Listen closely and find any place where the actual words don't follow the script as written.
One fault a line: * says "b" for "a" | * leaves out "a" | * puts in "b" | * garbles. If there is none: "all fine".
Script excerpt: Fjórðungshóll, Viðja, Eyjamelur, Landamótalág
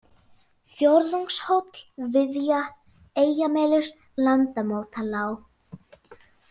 all fine